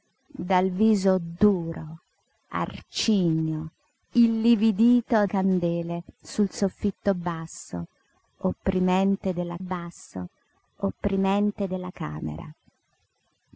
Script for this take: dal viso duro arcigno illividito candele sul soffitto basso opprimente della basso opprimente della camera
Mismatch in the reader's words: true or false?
false